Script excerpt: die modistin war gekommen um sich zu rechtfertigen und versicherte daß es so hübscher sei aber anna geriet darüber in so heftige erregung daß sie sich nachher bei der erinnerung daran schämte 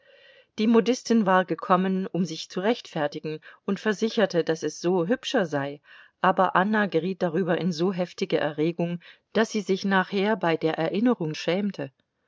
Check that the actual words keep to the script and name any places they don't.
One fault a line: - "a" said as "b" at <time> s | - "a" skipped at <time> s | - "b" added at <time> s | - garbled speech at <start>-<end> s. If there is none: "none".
- "daran" skipped at 11.3 s